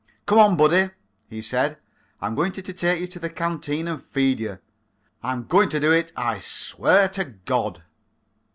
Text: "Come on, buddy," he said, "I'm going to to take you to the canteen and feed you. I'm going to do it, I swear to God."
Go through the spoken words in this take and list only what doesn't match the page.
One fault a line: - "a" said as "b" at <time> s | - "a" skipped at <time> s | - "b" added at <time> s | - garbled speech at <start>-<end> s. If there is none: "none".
none